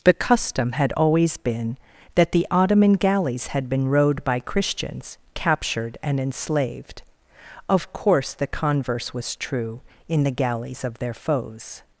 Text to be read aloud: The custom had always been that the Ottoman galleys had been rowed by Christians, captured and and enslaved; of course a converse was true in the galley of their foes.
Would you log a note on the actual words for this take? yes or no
yes